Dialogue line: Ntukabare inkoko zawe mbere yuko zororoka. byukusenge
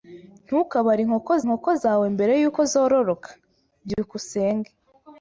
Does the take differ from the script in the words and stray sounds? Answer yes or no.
yes